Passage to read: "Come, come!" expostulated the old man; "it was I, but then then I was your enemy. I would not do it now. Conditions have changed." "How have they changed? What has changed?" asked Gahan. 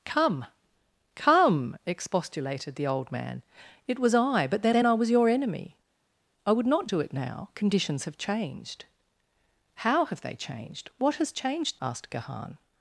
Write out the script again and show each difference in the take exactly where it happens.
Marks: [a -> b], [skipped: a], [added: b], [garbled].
"Come, come!" expostulated the old man; "it was I, but then then I was your enemy. I would not do it now. Conditions have changed." "How have they changed? What has changed?" asked Gahan.